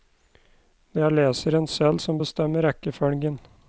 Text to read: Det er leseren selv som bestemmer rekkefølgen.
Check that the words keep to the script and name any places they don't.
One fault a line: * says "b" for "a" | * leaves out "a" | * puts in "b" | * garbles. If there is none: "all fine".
all fine